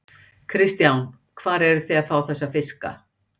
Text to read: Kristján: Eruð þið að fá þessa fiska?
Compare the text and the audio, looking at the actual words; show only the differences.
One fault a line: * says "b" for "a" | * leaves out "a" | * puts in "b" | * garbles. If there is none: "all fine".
* puts in "Hvar"